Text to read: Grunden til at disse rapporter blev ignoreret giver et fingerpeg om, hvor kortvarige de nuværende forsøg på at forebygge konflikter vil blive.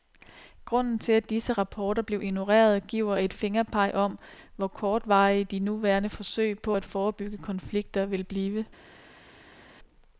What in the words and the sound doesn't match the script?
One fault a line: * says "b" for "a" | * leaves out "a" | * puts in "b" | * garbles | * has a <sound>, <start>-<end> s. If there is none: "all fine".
all fine